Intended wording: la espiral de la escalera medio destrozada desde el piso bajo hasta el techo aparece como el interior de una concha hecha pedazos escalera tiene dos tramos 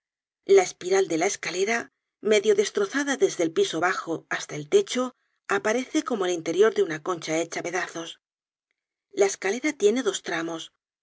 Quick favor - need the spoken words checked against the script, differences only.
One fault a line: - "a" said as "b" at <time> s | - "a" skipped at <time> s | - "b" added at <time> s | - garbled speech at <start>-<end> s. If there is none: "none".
- "la" added at 9.1 s